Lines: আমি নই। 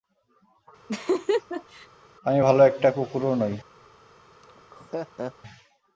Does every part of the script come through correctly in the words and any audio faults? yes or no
no